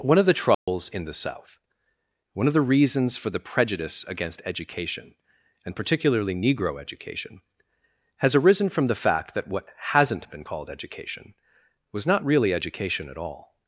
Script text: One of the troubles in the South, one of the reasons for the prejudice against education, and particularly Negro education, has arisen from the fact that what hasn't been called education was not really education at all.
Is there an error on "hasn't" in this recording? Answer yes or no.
no